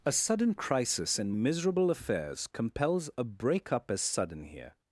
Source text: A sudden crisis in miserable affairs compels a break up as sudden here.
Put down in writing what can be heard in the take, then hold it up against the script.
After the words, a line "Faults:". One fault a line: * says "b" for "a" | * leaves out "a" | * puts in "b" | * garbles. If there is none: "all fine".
A sudden crisis in miserable affairs compels a break up as sudden here.
Faults:
all fine